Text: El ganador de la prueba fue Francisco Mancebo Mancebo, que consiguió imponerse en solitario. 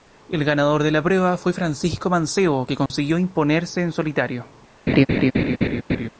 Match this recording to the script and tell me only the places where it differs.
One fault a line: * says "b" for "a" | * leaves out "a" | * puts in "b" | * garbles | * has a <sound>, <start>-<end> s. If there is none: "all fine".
* leaves out "Mancebo"
* has a dropout, 2.9-2.9 s
* has a laugh, 4.9-6.1 s